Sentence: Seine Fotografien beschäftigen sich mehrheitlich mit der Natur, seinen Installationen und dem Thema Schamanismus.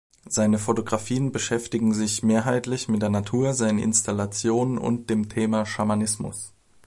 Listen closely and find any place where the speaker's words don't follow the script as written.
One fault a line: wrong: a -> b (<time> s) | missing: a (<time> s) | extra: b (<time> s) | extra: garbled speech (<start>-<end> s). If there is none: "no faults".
no faults